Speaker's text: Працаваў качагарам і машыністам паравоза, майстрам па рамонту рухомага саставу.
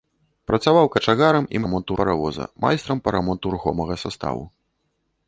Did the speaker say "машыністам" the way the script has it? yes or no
no